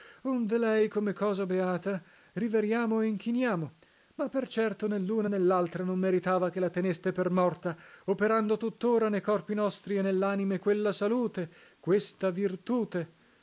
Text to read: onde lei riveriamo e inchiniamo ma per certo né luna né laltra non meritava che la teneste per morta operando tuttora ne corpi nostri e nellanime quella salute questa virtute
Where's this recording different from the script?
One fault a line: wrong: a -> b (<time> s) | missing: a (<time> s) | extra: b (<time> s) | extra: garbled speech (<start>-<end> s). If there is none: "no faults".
extra: come cosa beata (0.9 s)